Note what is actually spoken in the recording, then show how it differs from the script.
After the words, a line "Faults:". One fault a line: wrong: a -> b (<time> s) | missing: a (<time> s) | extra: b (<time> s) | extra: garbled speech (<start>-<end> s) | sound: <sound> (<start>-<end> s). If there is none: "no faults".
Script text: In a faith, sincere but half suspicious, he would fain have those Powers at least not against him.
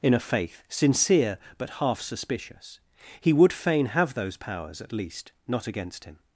In a faith, sincere but half suspicious, he would fain have those Powers at least not against him.
Faults:
no faults